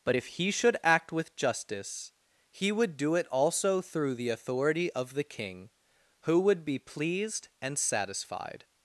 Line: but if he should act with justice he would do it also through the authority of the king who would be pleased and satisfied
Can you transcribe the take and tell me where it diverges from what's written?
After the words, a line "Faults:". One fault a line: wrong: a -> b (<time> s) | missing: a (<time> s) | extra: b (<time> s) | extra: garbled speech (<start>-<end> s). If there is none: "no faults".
but if he should act with justice he would do it also through the authority of the king who would be pleased and satisfied
Faults:
no faults